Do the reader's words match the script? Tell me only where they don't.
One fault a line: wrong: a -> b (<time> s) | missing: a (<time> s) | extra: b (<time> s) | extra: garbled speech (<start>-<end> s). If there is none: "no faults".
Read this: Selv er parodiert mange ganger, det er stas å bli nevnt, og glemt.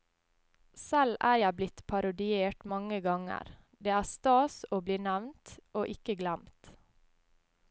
extra: jeg blitt (1.4 s)
extra: ikke (6.0 s)